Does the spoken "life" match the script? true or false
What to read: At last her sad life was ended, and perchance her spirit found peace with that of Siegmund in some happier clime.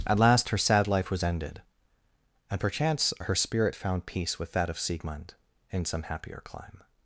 true